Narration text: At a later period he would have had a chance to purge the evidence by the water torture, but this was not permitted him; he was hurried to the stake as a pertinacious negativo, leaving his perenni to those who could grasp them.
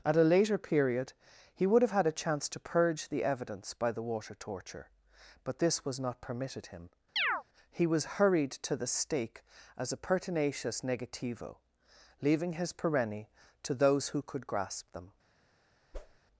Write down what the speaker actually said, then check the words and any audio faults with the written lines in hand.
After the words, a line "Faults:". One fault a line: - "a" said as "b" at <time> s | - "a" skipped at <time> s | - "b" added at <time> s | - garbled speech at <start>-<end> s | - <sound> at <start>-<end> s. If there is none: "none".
At a later period he would have had a chance to purge the evidence by the water torture, but this was not permitted him; he was hurried to the stake as a pertinacious negativo, leaving his perenni to those who could grasp them.
Faults:
- chirp at 7.2-7.4 s
- whoosh at 15.9-16.2 s